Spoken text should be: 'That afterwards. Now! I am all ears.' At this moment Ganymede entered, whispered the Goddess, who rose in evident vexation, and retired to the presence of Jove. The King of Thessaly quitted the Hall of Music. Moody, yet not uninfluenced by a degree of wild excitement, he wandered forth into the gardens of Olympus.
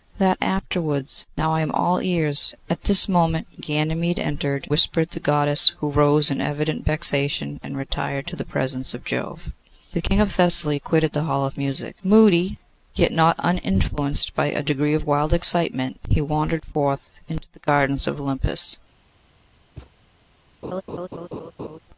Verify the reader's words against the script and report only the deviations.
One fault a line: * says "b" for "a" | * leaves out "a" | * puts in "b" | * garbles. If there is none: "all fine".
all fine